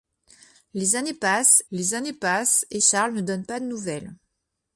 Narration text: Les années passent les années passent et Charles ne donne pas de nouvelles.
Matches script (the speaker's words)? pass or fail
pass